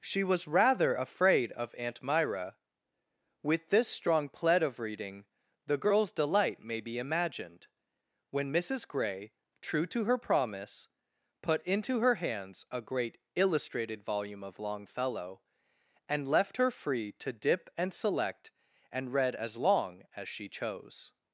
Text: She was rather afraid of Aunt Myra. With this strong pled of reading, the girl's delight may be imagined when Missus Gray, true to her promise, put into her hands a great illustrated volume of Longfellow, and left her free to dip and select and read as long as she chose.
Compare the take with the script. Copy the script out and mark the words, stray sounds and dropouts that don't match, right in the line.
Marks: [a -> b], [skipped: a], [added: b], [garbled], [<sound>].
She was rather afraid of Aunt Myra. With this strong pled of reading, the girl's delight may be imagined when Missus Gray, true to her promise, put into her hands a great illustrated volume of Longfellow, and left her free to dip and select and read as long as she chose.